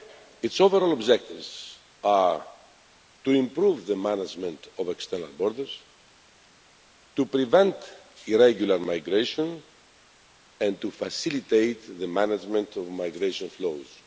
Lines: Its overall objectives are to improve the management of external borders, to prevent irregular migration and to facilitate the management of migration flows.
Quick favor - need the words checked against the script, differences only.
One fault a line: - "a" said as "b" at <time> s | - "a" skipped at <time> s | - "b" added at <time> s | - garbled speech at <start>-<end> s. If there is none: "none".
none